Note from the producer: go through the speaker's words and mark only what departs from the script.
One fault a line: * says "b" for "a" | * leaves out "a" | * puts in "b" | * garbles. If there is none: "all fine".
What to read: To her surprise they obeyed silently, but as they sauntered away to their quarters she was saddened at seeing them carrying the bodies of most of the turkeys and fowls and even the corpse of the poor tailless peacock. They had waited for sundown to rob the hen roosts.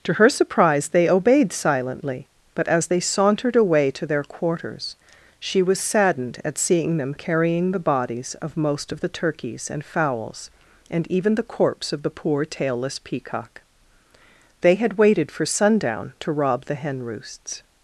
all fine